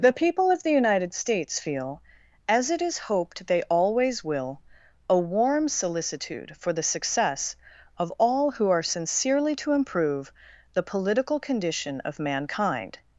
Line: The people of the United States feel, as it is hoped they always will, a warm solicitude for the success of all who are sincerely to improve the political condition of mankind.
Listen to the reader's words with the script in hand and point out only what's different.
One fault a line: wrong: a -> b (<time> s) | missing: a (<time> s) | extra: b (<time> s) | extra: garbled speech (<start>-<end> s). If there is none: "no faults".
no faults